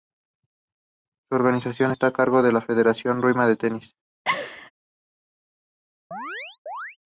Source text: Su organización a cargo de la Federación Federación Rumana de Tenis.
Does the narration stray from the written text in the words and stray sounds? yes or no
yes